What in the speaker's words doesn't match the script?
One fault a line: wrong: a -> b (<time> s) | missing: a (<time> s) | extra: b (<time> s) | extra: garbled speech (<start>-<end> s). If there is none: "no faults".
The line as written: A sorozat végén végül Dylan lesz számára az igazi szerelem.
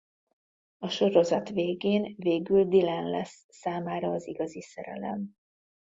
no faults